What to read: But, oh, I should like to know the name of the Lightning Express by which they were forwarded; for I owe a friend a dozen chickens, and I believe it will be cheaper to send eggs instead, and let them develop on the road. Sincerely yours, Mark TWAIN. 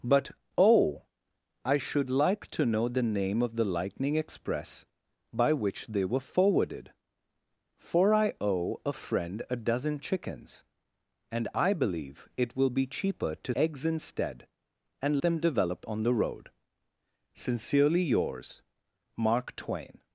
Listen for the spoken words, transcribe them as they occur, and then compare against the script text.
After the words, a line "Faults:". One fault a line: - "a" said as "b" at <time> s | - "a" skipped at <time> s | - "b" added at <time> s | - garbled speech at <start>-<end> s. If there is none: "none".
But, oh, I should like to know the name of the Lightning Express by which they were forwarded; for I owe a friend a dozen chickens, and I believe it will be cheaper to eggs instead, and them develop on the road. Sincerely yours, Mark TWAIN.
Faults:
- "send" skipped at 13.5 s
- "let" skipped at 15.2 s